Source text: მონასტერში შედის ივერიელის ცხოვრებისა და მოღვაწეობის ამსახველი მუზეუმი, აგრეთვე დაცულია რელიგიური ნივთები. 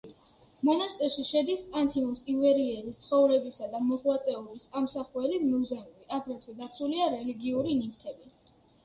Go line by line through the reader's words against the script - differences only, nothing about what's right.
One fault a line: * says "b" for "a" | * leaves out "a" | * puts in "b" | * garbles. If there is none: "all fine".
* puts in "ანთიმოზ"